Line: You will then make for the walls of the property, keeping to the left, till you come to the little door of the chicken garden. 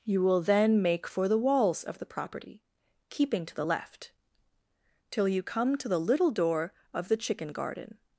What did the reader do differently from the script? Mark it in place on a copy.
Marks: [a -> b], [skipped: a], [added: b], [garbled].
You will then make for the walls of the property, keeping to the left, till you come to the little door of the chicken garden.